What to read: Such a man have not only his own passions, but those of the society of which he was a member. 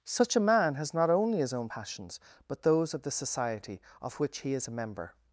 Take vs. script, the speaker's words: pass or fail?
fail